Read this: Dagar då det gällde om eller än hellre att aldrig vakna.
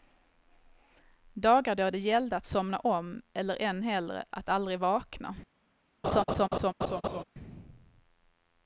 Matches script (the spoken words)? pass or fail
fail